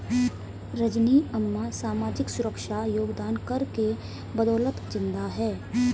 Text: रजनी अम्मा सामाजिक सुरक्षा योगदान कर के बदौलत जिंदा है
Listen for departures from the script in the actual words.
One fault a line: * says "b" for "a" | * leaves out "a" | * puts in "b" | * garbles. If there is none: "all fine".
all fine